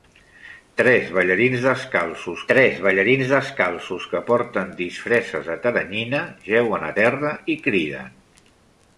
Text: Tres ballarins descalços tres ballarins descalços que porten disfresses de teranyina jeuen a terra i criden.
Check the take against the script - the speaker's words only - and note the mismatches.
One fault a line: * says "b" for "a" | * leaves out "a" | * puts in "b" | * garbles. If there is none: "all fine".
all fine